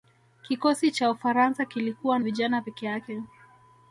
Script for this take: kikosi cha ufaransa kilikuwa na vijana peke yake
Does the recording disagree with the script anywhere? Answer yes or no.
yes